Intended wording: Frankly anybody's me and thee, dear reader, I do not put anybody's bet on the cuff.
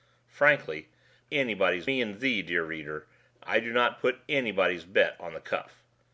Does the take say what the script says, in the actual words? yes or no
yes